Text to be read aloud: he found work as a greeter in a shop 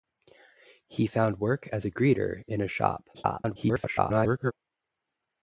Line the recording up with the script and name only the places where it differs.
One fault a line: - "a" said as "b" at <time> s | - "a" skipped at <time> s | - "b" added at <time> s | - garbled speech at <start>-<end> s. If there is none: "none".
- garbled speech at 3.1-4.5 s